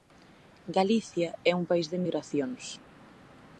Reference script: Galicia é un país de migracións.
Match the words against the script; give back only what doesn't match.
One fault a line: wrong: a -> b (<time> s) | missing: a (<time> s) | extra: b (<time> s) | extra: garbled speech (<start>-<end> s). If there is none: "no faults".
no faults